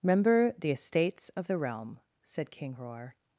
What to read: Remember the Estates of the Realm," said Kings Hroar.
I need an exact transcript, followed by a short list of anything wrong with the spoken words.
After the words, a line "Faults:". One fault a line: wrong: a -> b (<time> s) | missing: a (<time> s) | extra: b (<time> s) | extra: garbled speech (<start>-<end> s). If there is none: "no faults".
Remember the Estates of the Realm," said King Hroar.
Faults:
wrong: Kings -> King (2.5 s)